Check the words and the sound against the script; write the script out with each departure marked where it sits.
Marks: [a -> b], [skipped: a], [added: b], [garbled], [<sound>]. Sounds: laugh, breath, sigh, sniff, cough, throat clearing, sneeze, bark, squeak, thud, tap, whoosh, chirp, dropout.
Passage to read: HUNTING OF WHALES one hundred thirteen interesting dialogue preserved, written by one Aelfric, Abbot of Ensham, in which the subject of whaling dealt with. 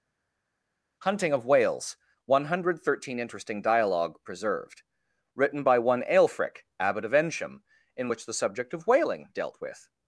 HUNTING OF WHALES one hundred thirteen interesting dialogue preserved, written by one Aelfric, Abbot of Ensham, in which the subject of whaling dealt with.